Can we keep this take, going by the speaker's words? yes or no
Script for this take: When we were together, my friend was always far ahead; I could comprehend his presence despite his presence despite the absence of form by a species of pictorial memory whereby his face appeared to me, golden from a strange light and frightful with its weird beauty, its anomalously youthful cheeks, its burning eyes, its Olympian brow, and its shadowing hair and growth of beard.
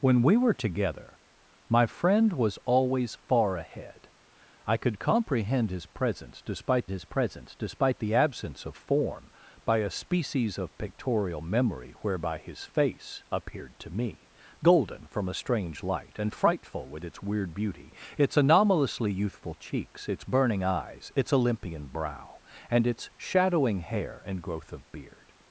yes